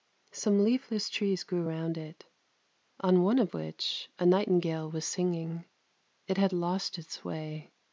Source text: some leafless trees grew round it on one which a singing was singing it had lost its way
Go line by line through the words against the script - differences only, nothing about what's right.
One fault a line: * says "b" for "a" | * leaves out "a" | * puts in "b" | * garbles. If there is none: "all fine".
* puts in "of"
* says "nightingale" for "singing"